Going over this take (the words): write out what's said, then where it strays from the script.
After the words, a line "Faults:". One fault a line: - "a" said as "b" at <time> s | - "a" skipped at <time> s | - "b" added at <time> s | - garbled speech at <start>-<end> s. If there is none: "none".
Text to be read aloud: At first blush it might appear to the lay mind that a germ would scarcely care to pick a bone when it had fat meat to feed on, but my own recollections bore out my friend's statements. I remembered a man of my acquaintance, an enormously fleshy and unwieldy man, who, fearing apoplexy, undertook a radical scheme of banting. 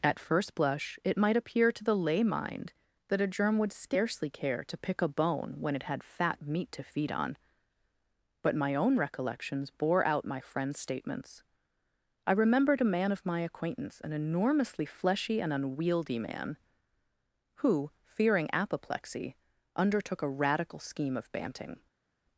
At first blush it might appear to the lay mind that a germ would scarcely care to pick a bone when it had fat meat to feed on, but my own recollections bore out my friend's statements. I remembered a man of my acquaintance, an enormously fleshy and unwieldy man, who, fearing apoplexy, undertook a radical scheme of banting.
Faults:
none